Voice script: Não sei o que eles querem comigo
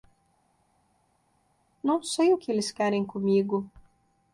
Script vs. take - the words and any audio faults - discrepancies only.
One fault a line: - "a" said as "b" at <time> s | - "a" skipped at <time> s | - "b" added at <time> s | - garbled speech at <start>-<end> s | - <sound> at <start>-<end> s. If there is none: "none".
none